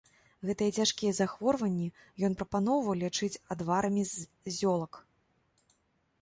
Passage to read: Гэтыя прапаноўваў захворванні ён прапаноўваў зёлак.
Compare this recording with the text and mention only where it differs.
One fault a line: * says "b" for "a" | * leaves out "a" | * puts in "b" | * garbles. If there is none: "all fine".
* says "цяжкія" for "прапаноўваў"
* puts in "лячыць адварамі з"